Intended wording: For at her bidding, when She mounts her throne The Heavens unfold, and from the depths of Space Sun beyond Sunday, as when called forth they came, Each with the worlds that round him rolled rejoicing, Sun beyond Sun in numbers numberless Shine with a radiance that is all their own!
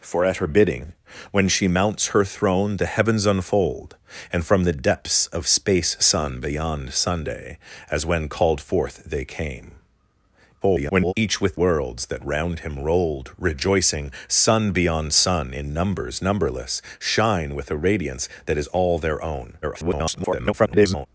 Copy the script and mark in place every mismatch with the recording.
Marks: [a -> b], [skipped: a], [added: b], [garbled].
For at her bidding, when She mounts her throne The Heavens unfold, and from the depths of Space Sun beyond Sunday, as when called forth they came, [garbled] Each with [skipped: the] worlds that round him rolled rejoicing, Sun beyond Sun in numbers numberless Shine with a radiance that is all their own! [garbled]